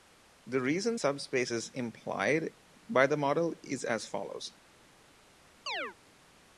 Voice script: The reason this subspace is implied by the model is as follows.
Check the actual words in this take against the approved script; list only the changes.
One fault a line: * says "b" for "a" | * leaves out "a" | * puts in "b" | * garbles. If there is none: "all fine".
* leaves out "this"